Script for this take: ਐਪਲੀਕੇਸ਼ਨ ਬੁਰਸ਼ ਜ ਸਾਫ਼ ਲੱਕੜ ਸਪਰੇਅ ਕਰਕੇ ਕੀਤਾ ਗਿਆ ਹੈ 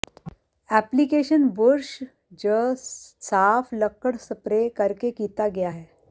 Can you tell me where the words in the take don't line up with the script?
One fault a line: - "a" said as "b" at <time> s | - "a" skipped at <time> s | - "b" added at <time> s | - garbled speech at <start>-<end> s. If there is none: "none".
none